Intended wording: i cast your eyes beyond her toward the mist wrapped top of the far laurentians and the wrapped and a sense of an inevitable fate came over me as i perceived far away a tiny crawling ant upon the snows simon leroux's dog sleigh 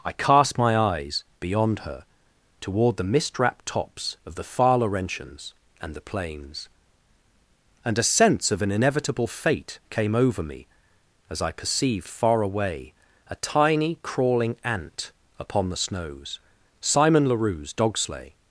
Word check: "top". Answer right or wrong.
wrong